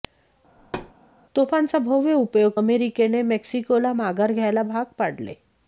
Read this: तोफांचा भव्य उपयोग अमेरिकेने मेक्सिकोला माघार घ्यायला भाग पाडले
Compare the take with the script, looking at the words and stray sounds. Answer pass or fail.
fail